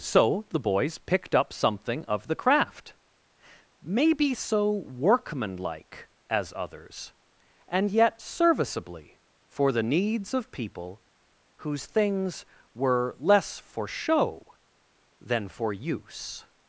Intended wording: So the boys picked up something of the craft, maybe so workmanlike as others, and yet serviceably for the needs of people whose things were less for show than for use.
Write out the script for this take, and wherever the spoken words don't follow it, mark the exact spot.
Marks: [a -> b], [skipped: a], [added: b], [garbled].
So the boys picked up something of the craft, maybe so workmanlike as others, and yet serviceably for the needs of people whose things were less for show than for use.